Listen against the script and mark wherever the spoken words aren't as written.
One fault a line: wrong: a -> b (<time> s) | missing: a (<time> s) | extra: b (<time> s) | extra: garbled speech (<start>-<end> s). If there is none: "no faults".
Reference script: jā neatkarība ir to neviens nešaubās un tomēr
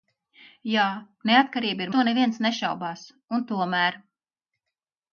no faults